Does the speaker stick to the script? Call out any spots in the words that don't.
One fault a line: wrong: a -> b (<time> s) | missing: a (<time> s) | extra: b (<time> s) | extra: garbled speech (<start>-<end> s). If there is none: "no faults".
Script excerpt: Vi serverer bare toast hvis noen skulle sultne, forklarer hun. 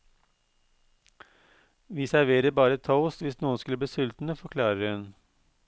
extra: bli (3.8 s)